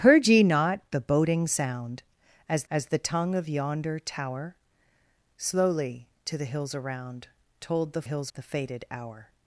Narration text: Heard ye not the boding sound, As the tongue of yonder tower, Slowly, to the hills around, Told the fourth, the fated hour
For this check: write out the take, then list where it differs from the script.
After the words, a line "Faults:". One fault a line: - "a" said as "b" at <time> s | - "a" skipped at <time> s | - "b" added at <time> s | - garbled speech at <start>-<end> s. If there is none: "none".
Heard ye not the boding sound, As As the tongue of yonder tower, Slowly, to the hills around, Told the hills, the fated hour
Faults:
- "As" added at 2.7 s
- "fourth" said as "hills" at 8.0 s